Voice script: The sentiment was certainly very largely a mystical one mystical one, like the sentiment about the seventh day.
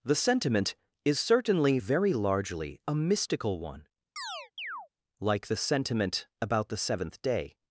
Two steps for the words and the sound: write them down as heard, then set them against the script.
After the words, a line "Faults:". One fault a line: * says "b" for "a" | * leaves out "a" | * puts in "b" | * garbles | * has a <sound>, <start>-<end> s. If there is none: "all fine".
The sentiment is certainly very largely a mystical one, like the sentiment about the seventh day.
Faults:
* says "is" for "was"
* leaves out "mystical one"
* has a chirp, 4.2-4.9 s